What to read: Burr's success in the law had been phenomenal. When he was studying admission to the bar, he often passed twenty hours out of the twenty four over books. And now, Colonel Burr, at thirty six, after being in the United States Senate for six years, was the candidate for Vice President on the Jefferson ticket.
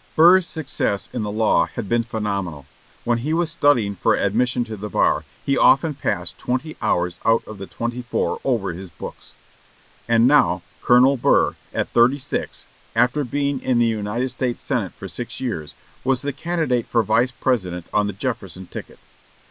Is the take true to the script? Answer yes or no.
no